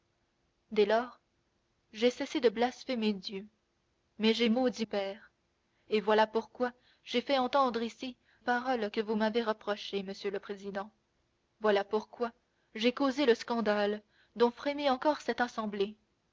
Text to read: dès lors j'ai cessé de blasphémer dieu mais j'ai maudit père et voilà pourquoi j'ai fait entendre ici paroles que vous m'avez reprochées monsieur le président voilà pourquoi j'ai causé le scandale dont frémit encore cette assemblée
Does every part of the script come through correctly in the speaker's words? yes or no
yes